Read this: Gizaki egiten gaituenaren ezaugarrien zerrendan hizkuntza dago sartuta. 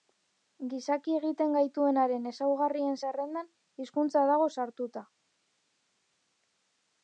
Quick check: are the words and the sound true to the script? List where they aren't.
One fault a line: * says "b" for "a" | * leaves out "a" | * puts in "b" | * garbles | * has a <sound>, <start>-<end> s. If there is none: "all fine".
all fine